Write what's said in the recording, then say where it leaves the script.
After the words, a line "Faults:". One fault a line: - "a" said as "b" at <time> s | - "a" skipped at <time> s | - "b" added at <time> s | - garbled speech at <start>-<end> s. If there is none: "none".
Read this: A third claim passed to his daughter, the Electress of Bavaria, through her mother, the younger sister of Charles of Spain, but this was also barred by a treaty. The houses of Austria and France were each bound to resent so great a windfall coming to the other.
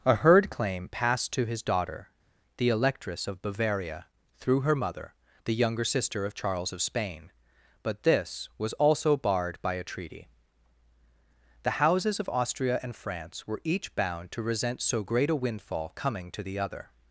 A heard claim passed to his daughter, the Electress of Bavaria, through her mother, the younger sister of Charles of Spain, but this was also barred by a treaty. The houses of Austria and France were each bound to resent so great a windfall coming to the other.
Faults:
- "third" said as "heard" at 0.1 s